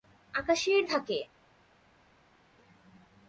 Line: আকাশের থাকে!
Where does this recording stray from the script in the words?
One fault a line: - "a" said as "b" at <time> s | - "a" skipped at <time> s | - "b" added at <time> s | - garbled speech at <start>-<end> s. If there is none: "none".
none